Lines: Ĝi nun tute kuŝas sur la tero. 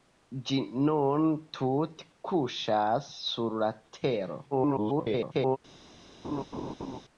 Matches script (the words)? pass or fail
fail